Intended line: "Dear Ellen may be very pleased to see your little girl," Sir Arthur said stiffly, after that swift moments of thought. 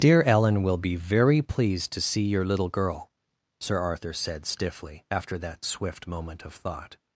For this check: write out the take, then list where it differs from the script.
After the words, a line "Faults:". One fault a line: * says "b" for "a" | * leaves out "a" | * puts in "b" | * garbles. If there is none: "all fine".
"Dear Ellen will be very pleased to see your little girl," Sir Arthur said stiffly, after that swift moment of thought.
Faults:
* says "will" for "may"
* says "moment" for "moments"